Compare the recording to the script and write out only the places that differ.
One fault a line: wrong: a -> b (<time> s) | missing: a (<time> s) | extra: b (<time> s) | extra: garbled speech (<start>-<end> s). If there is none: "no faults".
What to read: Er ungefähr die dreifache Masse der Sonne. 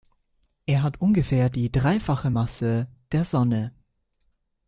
extra: hat (0.8 s)